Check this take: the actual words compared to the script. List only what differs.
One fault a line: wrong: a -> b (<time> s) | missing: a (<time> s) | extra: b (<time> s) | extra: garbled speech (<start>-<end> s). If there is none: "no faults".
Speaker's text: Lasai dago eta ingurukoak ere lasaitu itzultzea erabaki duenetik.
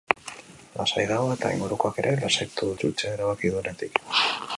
no faults